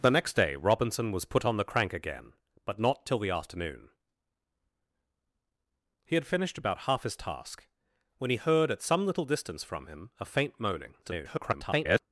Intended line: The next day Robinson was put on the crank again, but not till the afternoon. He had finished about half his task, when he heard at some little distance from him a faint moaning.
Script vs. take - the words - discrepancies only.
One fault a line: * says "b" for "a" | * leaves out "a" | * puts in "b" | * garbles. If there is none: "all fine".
* garbles